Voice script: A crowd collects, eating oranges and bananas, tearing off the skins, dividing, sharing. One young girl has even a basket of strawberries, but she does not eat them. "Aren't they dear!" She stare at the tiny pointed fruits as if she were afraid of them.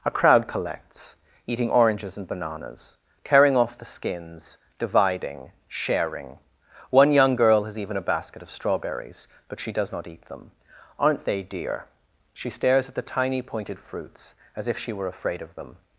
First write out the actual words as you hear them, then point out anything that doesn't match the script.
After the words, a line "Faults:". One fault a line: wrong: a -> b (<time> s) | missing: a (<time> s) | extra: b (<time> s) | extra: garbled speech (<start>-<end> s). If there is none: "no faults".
A crowd collects, eating oranges and bananas, tearing off the skins, dividing, sharing. One young girl has even a basket of strawberries, but she does not eat them. "Aren't they dear!" She stares at the tiny pointed fruits as if she were afraid of them.
Faults:
wrong: stare -> stares (12.5 s)